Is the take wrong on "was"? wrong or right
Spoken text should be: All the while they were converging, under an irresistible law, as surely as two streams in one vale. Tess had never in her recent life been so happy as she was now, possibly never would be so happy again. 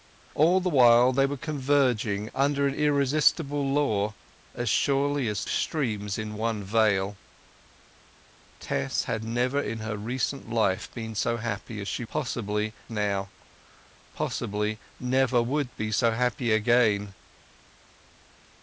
wrong